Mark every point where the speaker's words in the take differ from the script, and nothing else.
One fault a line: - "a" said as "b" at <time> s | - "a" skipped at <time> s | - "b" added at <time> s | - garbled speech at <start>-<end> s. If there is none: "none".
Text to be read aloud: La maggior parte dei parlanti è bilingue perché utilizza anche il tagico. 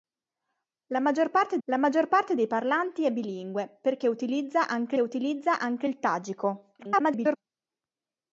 - "la maggior parte" added at 1.6 s
- "utilizza anche" added at 5.0 s
- garbled speech at 6.8-7.4 s